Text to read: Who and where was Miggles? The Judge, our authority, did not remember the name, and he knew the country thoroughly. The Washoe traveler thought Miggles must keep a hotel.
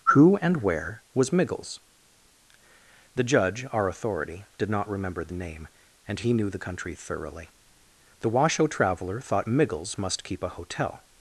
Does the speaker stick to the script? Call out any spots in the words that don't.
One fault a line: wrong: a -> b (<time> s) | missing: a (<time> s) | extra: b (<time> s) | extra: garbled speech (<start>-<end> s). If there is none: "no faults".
no faults